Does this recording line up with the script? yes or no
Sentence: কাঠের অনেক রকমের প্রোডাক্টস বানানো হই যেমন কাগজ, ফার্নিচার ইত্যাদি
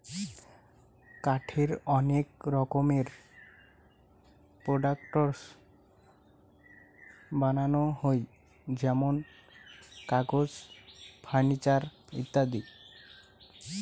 yes